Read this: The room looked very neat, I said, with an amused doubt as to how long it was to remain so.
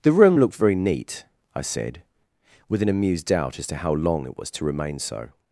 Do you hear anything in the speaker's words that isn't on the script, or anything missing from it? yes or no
no